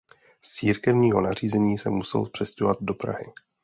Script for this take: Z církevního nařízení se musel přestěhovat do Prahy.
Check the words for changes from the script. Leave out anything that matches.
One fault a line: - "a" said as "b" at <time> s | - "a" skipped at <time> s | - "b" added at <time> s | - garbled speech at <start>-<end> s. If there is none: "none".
none